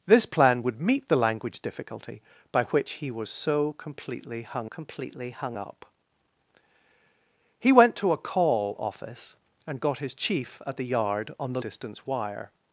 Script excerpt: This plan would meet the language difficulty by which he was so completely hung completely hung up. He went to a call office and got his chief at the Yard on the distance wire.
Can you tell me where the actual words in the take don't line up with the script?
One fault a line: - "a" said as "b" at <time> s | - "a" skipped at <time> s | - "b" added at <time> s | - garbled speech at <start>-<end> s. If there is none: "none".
none